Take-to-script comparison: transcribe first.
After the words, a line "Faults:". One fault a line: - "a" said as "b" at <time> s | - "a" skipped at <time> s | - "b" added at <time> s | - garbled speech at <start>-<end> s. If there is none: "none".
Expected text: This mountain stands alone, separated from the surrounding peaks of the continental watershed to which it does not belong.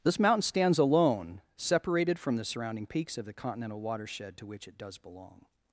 This mountain stands alone, separated from the surrounding peaks of the continental watershed to which it does belong.
Faults:
- "not" skipped at 5.0 s